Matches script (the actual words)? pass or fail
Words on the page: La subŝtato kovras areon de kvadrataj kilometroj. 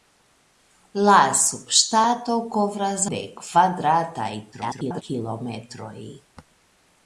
fail